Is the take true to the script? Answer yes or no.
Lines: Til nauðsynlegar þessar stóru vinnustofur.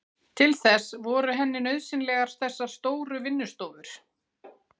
no